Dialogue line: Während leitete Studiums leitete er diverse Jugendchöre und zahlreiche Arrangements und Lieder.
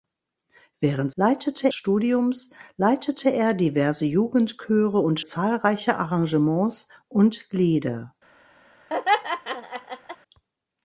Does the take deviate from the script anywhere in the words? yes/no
no